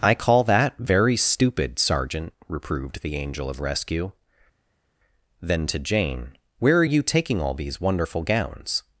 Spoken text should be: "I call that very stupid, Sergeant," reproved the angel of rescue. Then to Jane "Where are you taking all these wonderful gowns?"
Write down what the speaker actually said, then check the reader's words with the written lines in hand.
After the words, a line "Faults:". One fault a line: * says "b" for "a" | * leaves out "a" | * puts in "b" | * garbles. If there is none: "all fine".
"I call that very stupid, Sergeant," reproved the angel of rescue. Then to Jane "Where are you taking all these wonderful gowns?"
Faults:
all fine